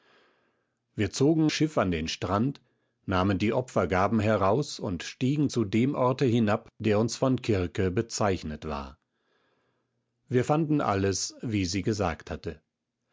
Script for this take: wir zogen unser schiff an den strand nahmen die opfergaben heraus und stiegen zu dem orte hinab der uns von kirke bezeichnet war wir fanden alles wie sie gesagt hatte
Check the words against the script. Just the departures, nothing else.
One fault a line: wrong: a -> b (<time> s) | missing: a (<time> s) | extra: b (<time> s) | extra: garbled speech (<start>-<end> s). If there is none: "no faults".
missing: unser (1.5 s)